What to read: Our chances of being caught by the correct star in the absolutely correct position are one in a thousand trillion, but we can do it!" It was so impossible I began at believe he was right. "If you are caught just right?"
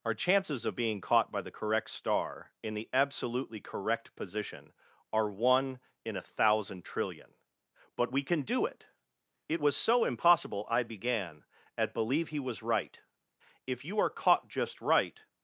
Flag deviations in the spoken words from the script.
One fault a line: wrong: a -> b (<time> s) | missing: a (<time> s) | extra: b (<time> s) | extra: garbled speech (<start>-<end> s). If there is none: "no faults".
no faults